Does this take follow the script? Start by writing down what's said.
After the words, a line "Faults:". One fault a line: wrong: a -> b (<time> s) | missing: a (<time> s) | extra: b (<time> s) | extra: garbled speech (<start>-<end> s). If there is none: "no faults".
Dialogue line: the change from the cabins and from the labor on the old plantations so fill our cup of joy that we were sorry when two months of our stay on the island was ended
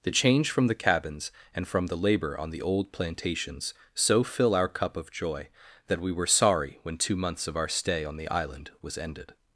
the change from the cabins and from the labor on the old plantations so fill our cup of joy that we were sorry when two months of our stay on the island was ended
Faults:
no faults